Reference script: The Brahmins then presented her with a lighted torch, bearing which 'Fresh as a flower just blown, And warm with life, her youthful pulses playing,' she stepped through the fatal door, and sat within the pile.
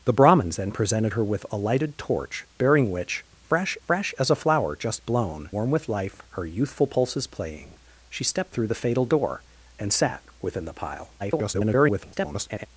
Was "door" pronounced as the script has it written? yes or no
yes